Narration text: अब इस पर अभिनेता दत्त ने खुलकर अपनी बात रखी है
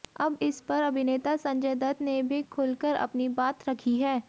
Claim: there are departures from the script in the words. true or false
true